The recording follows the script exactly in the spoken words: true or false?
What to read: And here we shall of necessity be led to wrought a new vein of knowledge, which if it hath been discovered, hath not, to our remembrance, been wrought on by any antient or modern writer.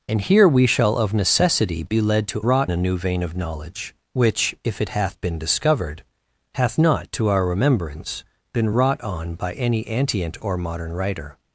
true